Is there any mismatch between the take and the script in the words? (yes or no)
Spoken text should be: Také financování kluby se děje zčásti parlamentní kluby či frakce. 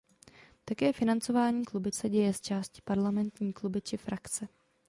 no